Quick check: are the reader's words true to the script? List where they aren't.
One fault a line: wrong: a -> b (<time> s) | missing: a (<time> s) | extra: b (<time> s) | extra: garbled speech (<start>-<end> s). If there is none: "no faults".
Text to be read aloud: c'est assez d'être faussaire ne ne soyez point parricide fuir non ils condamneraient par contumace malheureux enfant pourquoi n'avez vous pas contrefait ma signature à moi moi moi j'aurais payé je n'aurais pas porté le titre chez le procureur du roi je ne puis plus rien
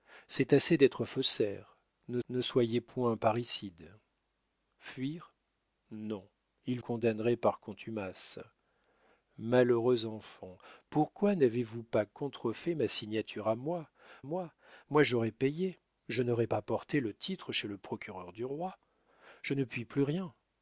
no faults